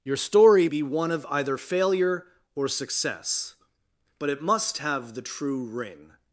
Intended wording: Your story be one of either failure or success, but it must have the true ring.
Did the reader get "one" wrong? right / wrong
right